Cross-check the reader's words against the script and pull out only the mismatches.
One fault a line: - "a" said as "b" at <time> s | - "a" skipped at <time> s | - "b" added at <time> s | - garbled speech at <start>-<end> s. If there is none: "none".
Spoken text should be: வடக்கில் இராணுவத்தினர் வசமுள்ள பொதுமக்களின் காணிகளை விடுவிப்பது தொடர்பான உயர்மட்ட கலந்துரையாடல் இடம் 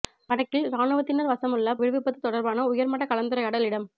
- "பொதுமக்களின் காணிகளை" skipped at 1.8 s